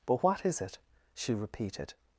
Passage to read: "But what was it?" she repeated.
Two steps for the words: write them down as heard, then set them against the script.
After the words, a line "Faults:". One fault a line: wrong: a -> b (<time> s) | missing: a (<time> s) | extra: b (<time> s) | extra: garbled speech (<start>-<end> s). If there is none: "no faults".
"But what is it?" she repeated.
Faults:
wrong: was -> is (0.4 s)